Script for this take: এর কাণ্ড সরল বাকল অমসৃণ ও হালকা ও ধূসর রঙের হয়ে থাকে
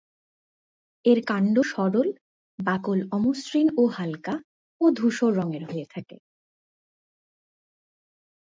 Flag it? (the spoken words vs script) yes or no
no